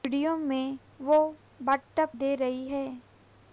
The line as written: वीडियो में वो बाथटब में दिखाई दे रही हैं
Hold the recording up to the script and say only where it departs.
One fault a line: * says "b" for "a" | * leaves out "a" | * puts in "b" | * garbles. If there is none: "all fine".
* leaves out "में दिखाई"